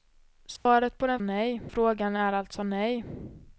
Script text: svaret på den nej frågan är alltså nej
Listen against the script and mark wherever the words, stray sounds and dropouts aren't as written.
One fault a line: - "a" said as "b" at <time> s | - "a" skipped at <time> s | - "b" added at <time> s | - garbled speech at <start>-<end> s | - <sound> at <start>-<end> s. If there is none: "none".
- dropout at 0.6-0.7 s